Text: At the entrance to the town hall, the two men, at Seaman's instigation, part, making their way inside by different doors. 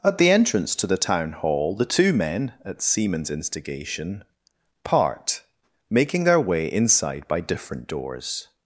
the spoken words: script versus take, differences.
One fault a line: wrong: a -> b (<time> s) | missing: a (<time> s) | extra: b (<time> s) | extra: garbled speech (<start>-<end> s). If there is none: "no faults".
no faults